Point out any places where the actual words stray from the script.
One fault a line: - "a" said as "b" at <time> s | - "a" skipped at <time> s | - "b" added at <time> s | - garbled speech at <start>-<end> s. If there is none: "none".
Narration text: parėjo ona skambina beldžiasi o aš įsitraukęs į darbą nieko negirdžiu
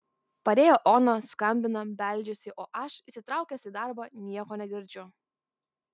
none